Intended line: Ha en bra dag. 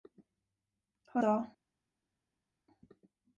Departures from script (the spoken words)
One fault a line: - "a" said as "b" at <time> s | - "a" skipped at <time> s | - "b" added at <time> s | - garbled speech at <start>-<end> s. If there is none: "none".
- "en bra" skipped at 1.2 s